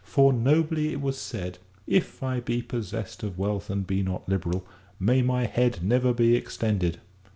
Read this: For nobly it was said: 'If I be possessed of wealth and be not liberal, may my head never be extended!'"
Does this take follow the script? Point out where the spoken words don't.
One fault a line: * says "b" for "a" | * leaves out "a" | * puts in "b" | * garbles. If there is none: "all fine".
all fine